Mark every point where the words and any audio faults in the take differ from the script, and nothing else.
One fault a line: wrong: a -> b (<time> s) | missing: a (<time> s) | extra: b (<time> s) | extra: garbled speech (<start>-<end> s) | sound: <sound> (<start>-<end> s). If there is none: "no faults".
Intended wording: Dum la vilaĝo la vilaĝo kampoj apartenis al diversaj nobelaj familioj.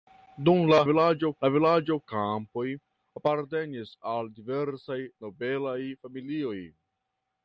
no faults